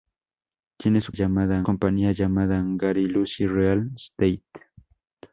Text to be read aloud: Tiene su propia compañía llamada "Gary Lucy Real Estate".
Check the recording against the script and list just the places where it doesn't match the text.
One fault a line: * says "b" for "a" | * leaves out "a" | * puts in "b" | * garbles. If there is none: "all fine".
* says "llamada" for "propia"